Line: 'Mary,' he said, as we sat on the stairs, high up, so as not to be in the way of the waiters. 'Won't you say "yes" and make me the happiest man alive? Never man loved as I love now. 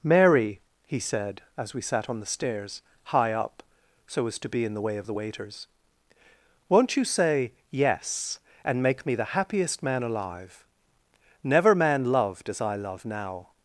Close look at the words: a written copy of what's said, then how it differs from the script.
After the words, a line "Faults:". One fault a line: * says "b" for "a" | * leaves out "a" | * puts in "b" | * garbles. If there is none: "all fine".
'Mary,' he said, as we sat on the stairs, high up, so as to be in the way of the waiters. 'Won't you say "yes" and make me the happiest man alive? Never man loved as I love now.
Faults:
* leaves out "not"